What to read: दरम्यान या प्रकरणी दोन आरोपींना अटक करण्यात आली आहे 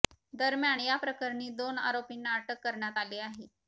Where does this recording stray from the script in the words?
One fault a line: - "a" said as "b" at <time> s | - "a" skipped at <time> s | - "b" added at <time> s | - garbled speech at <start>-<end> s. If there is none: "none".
none